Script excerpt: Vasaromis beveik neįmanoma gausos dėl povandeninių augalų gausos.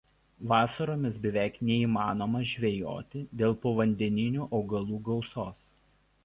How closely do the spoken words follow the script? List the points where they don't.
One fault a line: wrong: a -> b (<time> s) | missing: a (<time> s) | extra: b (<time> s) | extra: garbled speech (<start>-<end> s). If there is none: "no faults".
wrong: gausos -> žvejoti (2.5 s)